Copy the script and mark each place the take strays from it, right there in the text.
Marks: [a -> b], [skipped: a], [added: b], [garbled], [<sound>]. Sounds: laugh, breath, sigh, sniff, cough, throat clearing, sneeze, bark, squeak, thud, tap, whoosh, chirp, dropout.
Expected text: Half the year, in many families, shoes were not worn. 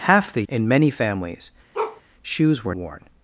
Half the [skipped: year,] in many families, [bark] shoes were [skipped: not] worn.